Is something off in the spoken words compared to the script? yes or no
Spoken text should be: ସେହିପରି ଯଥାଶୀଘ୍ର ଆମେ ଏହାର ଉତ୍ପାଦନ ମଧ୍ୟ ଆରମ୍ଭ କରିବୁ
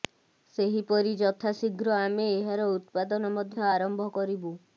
no